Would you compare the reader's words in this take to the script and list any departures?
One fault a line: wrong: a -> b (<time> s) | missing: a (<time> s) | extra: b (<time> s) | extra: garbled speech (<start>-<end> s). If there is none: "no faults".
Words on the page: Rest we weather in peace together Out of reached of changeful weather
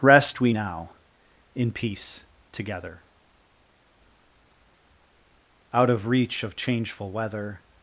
wrong: weather -> now (0.5 s)
wrong: reached -> reach (6.1 s)